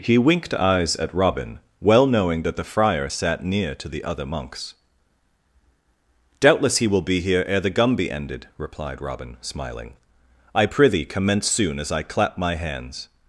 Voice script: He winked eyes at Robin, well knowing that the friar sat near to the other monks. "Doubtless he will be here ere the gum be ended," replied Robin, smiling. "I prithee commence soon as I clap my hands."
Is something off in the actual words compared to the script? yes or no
no